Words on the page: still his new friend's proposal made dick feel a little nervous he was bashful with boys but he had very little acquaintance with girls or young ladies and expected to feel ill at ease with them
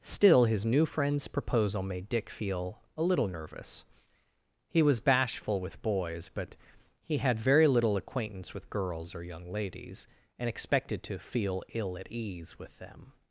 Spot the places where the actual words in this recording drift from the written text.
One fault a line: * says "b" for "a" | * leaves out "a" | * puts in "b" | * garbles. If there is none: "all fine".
all fine